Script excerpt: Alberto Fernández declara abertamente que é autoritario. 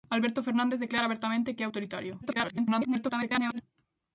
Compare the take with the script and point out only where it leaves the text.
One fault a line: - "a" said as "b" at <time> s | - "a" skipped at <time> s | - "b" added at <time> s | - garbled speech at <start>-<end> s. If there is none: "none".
- garbled speech at 2.2-3.6 s